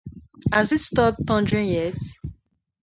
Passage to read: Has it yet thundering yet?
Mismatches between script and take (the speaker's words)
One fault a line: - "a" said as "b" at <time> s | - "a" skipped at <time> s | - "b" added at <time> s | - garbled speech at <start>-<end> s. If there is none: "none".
- "yet" said as "stopped" at 0.8 s